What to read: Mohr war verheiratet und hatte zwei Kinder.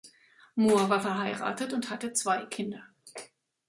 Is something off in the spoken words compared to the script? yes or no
no